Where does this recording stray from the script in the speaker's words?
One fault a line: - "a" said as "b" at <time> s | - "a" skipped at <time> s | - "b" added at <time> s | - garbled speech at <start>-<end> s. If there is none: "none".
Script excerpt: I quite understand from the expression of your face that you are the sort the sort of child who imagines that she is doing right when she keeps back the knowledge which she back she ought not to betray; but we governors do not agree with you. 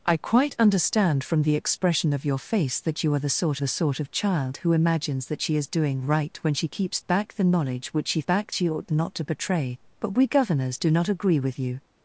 none